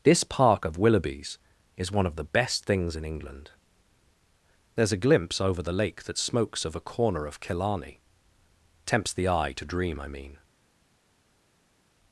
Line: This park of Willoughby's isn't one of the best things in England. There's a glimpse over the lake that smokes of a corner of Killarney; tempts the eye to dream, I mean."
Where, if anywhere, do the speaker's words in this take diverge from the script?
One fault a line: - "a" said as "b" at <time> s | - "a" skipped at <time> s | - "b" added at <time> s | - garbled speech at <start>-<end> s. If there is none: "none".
- "isn't" said as "is" at 1.8 s